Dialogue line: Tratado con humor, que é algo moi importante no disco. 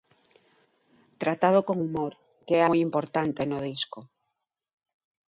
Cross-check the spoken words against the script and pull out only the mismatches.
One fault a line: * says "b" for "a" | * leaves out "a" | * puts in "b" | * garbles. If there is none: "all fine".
* leaves out "algo"